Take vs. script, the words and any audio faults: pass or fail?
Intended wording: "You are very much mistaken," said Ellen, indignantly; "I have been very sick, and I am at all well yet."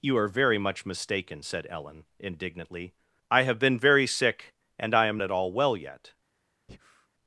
fail